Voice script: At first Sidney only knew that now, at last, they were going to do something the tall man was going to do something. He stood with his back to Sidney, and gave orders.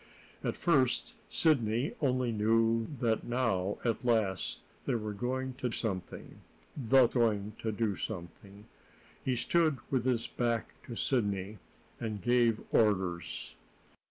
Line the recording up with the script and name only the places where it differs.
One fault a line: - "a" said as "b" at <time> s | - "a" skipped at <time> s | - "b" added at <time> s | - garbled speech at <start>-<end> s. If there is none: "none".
- "do" skipped at 5.7 s
- "tall man was" skipped at 7.1 s